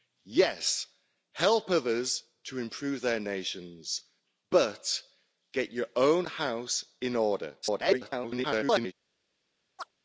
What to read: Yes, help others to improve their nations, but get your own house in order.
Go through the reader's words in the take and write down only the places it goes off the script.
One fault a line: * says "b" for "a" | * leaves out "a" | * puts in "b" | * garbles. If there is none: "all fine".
* garbles